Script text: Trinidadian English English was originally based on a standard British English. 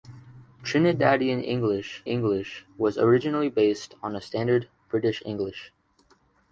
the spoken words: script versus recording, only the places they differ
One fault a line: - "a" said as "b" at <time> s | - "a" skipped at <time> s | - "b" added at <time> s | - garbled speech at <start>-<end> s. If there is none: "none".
none